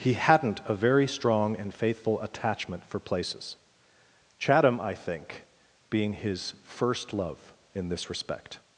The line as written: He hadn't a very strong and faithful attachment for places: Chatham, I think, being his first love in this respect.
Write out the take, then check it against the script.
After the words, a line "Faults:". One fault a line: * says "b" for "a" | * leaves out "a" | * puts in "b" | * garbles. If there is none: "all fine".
He hadn't a very strong and faithful attachment for places: Chatham, I think, being his first love in this respect.
Faults:
all fine